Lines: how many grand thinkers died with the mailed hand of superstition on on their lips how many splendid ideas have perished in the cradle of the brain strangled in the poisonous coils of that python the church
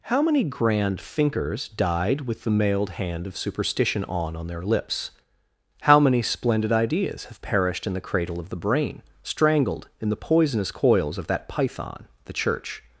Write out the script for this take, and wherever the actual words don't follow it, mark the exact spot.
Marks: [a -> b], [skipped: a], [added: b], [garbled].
how many grand thinkers died with the mailed hand of superstition on on their lips how many splendid ideas have perished in the cradle of the brain strangled in the poisonous coils of that python the church